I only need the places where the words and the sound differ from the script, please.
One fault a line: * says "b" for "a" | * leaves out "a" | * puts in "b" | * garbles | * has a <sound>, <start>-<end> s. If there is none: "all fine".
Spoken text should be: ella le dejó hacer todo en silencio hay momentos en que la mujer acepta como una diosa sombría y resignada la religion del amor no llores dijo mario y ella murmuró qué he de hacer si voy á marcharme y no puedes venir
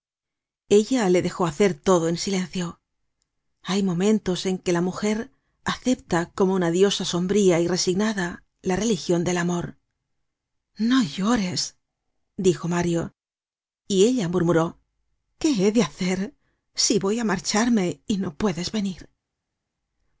all fine